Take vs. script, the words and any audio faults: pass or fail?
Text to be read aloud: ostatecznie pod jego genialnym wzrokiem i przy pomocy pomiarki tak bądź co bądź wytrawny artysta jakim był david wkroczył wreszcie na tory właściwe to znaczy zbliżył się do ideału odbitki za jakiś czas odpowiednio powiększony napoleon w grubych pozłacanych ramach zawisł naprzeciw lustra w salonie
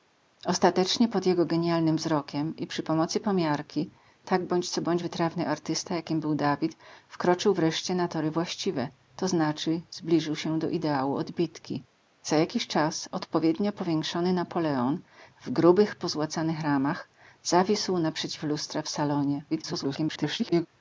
fail